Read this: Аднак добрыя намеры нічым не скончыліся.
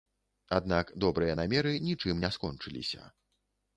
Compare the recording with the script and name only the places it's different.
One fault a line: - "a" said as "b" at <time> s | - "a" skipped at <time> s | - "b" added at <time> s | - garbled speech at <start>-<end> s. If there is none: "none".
none